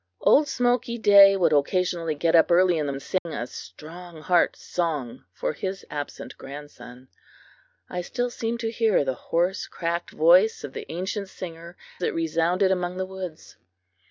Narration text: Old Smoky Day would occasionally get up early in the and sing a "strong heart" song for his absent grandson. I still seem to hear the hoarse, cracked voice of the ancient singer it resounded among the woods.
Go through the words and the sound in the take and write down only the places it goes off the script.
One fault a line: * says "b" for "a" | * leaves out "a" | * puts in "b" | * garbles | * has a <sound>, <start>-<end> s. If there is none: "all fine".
* has a dropout, 3.2-3.3 s